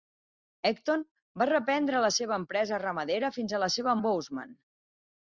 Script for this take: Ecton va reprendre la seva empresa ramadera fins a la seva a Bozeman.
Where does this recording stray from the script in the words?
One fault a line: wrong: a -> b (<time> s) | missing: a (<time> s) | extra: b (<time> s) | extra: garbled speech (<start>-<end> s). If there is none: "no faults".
no faults